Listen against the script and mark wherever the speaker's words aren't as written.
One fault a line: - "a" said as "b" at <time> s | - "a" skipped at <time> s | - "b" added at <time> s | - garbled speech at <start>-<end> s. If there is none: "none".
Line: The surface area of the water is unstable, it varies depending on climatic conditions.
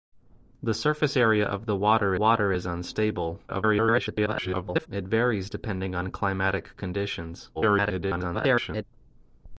- "water" added at 2.1 s
- garbled speech at 3.5-4.9 s
- garbled speech at 7.5-8.8 s